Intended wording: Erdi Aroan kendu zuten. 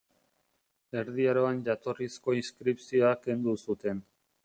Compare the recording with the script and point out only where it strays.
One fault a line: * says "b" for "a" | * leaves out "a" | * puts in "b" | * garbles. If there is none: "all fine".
* puts in "jatorrizko inskripzioa"